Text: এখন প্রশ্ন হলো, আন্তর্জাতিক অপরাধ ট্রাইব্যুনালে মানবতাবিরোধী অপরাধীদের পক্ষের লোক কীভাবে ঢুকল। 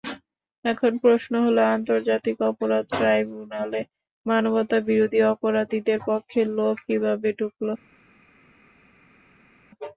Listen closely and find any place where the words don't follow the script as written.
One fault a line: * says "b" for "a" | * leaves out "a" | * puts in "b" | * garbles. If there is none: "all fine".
all fine